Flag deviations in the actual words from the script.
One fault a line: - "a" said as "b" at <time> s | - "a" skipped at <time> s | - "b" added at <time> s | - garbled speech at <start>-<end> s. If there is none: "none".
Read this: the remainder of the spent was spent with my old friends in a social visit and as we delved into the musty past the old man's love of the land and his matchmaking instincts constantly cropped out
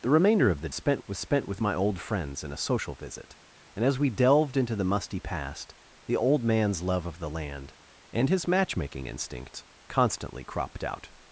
none